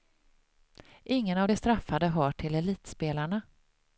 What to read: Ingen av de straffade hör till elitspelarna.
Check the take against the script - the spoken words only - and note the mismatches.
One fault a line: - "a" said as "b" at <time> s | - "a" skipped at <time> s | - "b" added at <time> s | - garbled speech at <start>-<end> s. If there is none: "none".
none